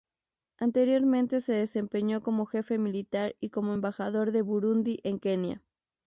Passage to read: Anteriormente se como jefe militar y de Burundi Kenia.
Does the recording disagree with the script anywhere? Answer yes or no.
yes